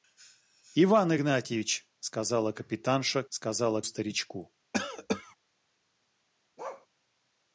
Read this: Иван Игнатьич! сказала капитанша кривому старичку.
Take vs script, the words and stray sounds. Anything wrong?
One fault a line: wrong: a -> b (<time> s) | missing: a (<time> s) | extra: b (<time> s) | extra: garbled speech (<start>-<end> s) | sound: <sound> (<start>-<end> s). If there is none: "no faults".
wrong: кривому -> сказала (3.3 s)
sound: cough (4.7-5.4 s)
sound: bark (6.6-6.9 s)